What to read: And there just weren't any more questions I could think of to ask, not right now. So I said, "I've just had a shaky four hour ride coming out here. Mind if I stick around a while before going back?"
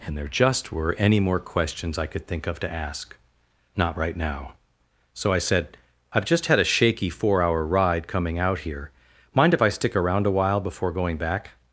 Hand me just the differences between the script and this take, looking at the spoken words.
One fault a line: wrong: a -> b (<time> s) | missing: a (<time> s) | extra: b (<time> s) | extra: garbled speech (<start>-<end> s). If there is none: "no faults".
wrong: weren't -> were (0.7 s)